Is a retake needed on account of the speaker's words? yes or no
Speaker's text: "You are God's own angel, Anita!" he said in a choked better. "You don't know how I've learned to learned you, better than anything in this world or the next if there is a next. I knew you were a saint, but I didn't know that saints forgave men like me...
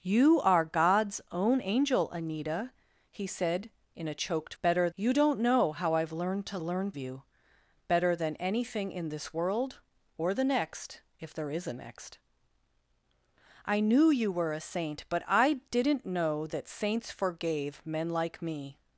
no